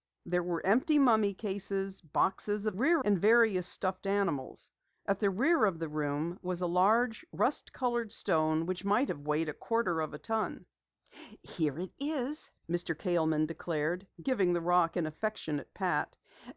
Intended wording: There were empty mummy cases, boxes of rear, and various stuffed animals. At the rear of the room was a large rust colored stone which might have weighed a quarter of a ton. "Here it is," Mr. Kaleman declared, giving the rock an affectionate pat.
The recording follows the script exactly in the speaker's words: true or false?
true